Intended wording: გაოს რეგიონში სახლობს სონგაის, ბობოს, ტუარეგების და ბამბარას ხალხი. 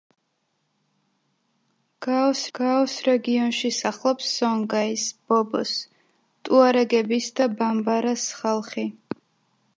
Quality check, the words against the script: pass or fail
fail